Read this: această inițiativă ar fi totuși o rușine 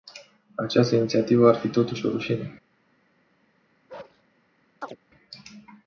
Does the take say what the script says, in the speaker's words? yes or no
yes